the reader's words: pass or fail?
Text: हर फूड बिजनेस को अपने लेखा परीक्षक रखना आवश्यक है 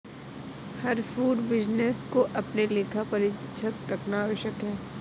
pass